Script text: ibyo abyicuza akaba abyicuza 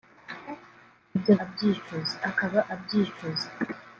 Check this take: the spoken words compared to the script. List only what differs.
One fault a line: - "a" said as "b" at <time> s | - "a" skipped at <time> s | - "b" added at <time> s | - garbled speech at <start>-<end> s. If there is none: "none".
none